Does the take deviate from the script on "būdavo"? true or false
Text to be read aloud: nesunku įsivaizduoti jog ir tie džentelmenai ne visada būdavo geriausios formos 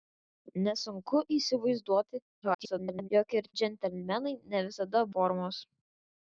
true